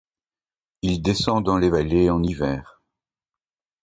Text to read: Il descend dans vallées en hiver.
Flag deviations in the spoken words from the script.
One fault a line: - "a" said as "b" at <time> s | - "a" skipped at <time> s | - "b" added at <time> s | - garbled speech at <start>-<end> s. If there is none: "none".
- "les" added at 1.6 s